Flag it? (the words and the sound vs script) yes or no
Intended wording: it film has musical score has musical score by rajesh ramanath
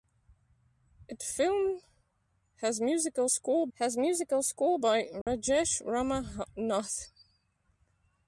yes